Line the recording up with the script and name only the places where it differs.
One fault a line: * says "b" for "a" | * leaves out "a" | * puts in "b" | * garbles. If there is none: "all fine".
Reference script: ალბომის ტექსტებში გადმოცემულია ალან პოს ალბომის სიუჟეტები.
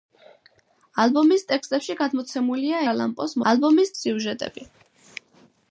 all fine